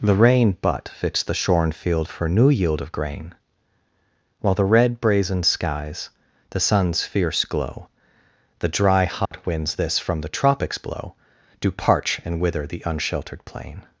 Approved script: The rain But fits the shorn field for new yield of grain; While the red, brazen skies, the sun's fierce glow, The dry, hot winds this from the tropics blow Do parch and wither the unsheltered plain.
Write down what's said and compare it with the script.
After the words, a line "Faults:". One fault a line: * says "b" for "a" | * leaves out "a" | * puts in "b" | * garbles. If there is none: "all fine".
The rain But fits the shorn field for new yield of grain; While the red, brazen skies, the sun's fierce glow, The dry, hot winds this from the tropics blow Do parch and wither the unsheltered plain.
Faults:
all fine